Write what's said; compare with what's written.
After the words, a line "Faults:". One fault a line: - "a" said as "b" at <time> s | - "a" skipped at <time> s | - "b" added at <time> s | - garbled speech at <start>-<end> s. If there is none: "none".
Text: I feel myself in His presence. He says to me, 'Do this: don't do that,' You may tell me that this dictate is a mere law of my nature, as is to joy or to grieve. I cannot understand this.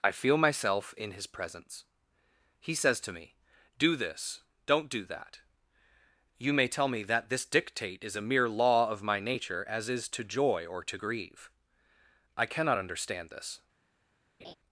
I feel myself in His presence. He says to me, 'Do this: don't do that,' You may tell me that this dictate is a mere law of my nature, as is to joy or to grieve. I cannot understand this.
Faults:
none